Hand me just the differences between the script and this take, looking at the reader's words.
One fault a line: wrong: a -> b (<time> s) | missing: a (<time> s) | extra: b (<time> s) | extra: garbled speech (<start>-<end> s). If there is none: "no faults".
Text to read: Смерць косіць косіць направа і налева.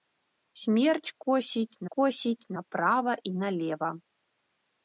no faults